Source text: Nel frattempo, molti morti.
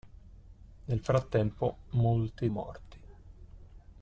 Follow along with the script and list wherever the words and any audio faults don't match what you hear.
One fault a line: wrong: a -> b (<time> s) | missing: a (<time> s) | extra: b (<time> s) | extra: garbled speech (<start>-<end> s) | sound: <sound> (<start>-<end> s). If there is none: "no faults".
no faults